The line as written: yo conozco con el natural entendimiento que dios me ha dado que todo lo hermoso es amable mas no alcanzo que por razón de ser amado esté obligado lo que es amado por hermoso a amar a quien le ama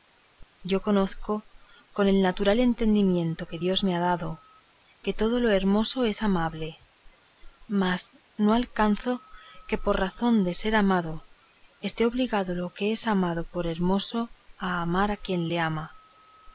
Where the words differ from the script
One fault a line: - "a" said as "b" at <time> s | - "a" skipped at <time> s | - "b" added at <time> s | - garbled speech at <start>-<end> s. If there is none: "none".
none